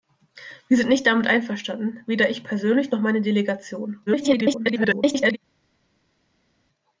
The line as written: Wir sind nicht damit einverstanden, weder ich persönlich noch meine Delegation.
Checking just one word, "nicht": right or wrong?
right